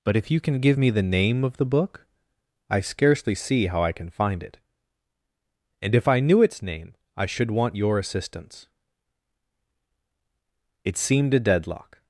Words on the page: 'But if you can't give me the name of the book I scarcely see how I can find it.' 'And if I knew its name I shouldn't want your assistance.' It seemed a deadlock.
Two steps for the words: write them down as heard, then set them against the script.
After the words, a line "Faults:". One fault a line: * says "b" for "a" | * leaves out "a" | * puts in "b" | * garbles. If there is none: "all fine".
'But if you can give me the name of the book I scarcely see how I can find it.' 'And if I knew its name I should want your assistance.' It seemed a deadlock.
Faults:
* says "can" for "can't"
* says "should" for "shouldn't"